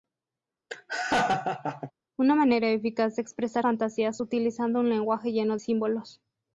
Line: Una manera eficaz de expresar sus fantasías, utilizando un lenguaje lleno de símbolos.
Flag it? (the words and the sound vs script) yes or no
yes